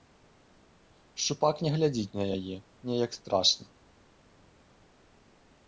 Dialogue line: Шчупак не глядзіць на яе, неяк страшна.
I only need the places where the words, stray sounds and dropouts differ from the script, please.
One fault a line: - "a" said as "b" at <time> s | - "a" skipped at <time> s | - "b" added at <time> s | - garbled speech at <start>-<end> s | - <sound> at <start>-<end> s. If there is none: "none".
none